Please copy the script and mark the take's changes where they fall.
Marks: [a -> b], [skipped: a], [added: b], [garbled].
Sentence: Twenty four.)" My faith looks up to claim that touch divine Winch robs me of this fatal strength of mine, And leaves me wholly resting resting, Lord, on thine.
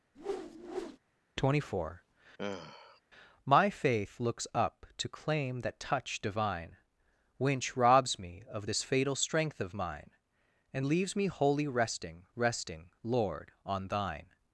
Twenty four.)" My faith looks up to claim that touch divine Winch robs me of this fatal strength of mine, And leaves me wholly resting resting, Lord, on thine.